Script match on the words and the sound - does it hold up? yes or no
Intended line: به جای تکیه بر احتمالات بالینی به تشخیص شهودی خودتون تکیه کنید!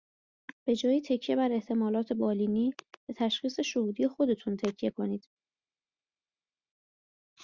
yes